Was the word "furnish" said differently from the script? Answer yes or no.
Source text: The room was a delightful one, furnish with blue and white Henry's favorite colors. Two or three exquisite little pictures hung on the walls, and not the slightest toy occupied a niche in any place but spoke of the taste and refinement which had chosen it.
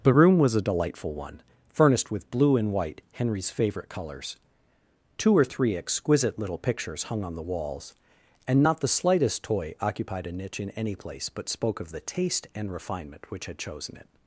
yes